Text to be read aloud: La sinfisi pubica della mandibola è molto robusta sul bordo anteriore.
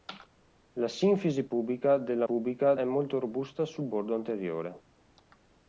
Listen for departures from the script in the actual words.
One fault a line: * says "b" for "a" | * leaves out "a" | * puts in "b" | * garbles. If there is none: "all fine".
* says "pubica" for "mandibola"